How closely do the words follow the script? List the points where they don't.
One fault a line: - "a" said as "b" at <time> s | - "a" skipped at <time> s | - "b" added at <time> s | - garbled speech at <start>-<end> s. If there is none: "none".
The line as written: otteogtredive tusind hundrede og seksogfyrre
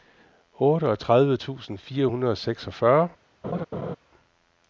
- "fire" added at 1.8 s